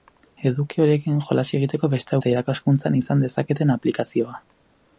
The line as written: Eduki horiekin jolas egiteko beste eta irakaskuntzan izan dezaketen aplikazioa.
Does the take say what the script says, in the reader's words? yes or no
yes